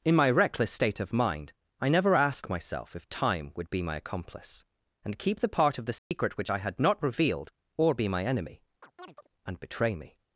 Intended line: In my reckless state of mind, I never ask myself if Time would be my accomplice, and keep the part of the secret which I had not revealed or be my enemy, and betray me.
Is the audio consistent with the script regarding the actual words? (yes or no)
yes